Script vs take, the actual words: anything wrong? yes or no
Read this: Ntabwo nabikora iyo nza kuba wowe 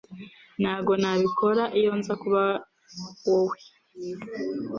no